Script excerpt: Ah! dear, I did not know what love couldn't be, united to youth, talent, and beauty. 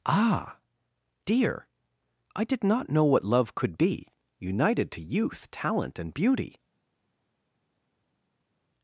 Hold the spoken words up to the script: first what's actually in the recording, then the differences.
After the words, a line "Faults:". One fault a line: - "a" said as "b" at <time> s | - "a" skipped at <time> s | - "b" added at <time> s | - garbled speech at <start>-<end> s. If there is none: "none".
Ah! dear, I did not know what love could be, united to youth, talent, and beauty.
Faults:
- "couldn't" said as "could" at 3.5 s